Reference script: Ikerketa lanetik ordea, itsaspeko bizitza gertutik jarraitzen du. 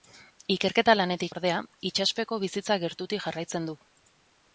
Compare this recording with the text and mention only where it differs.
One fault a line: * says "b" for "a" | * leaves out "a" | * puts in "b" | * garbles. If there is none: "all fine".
all fine